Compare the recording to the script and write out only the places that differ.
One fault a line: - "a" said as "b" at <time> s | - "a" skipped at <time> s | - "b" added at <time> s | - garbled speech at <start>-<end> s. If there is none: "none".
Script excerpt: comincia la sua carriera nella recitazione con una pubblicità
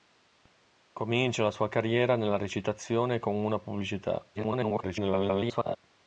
- garbled speech at 4.3-5.8 s